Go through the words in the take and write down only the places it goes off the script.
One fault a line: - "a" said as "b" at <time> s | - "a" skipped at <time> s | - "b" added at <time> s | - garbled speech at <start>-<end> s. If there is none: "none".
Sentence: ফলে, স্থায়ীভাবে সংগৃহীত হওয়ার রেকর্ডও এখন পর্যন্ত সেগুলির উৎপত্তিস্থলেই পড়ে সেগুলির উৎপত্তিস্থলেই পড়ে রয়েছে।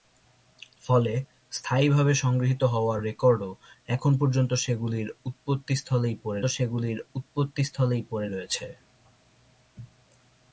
none